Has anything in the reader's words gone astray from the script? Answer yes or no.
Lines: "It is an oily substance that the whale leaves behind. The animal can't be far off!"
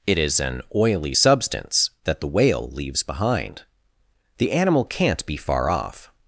no